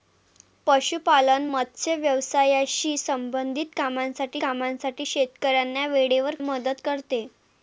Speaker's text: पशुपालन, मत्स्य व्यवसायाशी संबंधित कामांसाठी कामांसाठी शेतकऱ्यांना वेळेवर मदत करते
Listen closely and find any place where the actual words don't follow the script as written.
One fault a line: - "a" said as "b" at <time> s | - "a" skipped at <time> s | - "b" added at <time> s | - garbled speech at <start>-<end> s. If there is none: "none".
none